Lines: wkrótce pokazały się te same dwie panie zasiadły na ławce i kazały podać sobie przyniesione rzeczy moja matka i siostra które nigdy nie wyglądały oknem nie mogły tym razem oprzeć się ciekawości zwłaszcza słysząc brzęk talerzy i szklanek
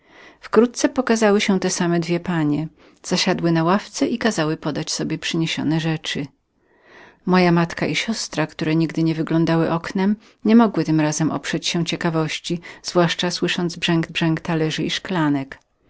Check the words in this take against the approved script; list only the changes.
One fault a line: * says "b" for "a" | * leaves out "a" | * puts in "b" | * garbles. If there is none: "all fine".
* puts in "brzęk"